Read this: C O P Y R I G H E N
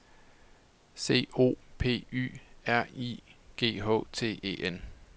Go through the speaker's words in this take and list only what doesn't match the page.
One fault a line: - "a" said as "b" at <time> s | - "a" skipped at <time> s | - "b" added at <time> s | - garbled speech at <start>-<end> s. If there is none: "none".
- "T" added at 4.1 s